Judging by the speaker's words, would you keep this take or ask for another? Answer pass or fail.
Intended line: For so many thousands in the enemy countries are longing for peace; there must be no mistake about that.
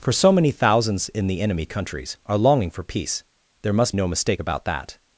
fail